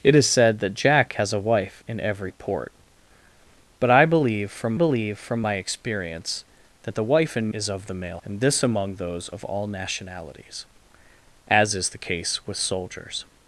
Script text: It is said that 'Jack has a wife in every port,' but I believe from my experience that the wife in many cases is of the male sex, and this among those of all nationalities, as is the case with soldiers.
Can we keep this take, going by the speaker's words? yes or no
no